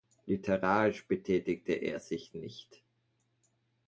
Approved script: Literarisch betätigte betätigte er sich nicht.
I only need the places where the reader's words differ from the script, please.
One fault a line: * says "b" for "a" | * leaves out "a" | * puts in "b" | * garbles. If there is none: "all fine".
* leaves out "betätigte"